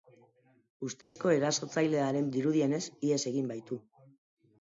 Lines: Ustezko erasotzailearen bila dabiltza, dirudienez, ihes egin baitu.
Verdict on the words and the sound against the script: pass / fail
fail